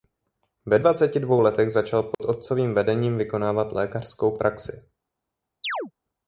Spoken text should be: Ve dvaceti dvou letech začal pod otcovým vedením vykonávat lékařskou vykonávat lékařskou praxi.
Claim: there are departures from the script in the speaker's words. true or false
true